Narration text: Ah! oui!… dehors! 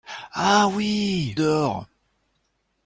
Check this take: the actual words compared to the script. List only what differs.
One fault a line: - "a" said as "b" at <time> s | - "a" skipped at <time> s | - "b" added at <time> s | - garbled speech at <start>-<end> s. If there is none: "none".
none